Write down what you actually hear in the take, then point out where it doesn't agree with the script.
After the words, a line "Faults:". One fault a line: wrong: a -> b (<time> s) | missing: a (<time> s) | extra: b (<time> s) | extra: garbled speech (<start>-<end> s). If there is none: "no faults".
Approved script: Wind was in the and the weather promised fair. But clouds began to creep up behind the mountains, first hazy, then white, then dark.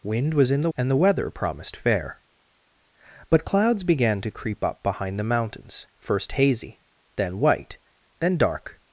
Wind was in the and the weather promised fair. But clouds began to creep up behind the mountains, first hazy, then white, then dark.
Faults:
no faults